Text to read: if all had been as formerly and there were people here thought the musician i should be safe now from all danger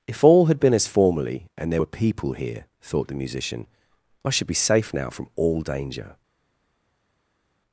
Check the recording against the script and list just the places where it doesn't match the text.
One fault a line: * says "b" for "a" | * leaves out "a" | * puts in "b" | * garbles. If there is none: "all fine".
all fine